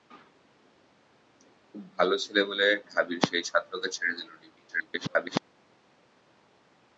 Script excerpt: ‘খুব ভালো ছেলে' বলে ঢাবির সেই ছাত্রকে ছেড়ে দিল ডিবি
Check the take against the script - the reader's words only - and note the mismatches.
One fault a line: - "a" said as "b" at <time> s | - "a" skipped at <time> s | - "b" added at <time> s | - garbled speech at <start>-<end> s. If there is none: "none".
- garbled speech at 4.7-5.4 s